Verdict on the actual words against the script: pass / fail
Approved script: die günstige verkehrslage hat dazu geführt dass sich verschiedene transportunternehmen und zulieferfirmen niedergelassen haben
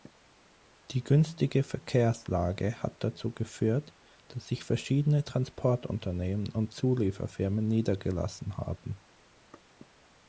pass